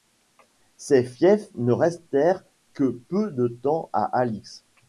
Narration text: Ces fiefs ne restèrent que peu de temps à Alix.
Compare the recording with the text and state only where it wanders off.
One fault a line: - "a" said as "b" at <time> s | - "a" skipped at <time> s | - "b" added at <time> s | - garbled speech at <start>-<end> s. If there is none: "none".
none